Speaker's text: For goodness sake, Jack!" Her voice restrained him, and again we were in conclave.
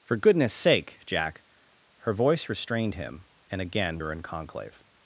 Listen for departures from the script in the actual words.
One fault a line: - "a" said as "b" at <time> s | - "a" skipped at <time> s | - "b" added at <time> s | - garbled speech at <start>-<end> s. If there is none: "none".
- "we" skipped at 4.0 s